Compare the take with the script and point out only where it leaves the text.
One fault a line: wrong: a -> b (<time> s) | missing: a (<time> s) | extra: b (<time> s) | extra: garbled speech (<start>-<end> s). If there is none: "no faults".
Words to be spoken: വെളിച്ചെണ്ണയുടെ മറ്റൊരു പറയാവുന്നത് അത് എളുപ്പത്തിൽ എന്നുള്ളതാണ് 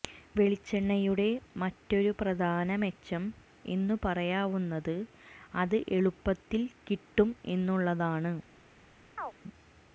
extra: പ്രധാന മെച്ചം എന്നു (2.2 s)
extra: കിട്ടും (6.9 s)